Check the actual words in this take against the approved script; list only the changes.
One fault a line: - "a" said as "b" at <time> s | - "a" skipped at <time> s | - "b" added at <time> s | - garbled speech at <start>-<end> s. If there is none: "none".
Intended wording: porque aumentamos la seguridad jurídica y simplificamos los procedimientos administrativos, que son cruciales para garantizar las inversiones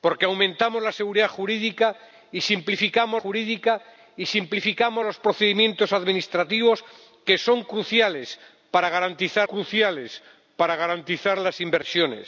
- "jurídica y simplificamos" added at 3.2 s
- "cruciales para garantizar" added at 9.4 s